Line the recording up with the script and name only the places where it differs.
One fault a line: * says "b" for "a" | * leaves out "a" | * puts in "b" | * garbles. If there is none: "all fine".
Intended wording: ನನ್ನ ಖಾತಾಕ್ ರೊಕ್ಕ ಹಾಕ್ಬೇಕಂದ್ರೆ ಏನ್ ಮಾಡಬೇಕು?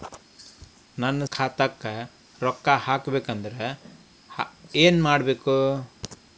all fine